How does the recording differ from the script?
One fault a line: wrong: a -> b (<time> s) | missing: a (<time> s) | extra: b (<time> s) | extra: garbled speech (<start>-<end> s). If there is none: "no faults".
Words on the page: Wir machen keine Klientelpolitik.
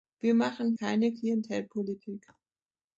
no faults